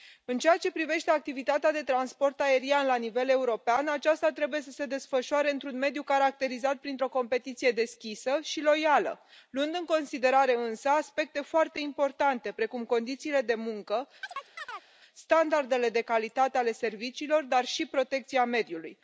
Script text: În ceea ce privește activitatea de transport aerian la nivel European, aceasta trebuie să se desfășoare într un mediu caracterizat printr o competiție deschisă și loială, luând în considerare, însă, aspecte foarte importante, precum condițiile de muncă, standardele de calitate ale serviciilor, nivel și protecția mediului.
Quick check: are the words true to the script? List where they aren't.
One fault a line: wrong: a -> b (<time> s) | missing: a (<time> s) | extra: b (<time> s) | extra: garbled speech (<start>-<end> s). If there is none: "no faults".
wrong: nivel -> dar (17.4 s)